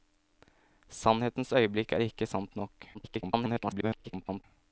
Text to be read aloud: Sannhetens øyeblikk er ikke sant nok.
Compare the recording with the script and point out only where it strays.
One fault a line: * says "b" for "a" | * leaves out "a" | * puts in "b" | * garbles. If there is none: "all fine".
* garbles